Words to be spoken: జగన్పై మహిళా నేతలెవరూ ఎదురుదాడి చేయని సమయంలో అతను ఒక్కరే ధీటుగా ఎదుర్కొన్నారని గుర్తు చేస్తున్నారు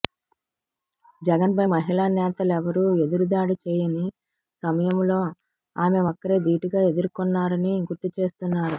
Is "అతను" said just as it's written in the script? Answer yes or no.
no